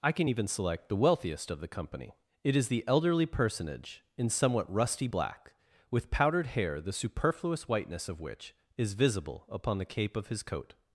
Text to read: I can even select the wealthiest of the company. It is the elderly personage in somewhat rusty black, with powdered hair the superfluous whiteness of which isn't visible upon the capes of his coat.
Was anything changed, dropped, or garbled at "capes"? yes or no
yes